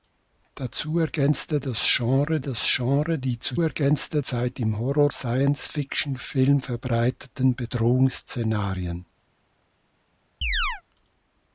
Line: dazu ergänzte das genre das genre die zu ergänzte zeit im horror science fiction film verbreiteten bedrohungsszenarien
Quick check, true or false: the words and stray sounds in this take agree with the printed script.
false